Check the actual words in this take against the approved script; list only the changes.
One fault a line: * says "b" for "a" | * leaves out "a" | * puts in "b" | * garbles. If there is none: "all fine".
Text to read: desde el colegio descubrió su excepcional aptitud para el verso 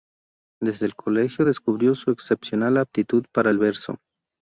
all fine